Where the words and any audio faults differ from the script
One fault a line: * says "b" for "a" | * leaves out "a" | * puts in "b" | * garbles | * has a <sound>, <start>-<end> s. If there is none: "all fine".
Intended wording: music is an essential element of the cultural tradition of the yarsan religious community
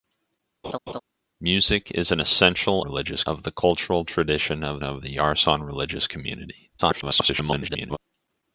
* has a laugh, 0.6-1.0 s
* says "religious" for "element"
* puts in "of"
* garbles